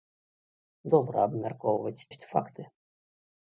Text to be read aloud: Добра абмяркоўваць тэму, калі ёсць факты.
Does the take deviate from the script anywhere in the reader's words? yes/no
yes